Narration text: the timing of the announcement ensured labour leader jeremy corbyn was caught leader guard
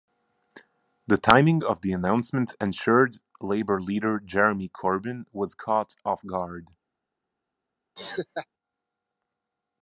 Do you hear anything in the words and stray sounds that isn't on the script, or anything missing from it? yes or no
yes